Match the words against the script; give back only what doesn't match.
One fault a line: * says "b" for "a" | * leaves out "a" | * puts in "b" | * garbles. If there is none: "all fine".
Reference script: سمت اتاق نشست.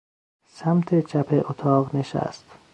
* puts in "چپ"